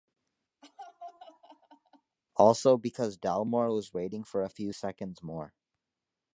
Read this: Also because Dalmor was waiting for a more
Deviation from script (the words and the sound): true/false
true